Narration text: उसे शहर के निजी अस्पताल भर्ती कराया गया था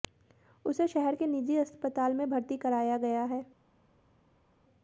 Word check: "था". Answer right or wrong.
wrong